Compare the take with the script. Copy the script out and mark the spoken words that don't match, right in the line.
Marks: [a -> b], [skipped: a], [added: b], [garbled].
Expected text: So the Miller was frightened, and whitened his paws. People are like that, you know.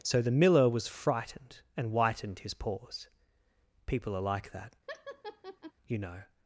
So the Miller was frightened, and whitened his paws. People are like that, you know.